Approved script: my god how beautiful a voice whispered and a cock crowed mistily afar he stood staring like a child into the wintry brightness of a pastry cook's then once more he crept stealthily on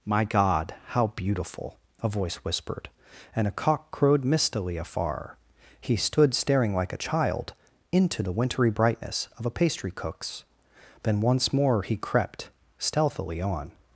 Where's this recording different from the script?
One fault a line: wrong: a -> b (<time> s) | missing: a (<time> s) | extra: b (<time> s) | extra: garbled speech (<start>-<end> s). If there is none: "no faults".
no faults